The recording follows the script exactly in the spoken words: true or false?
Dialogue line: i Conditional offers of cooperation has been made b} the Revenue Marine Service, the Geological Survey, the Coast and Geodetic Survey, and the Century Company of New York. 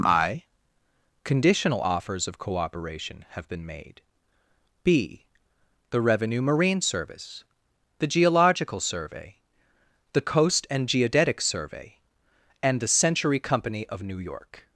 false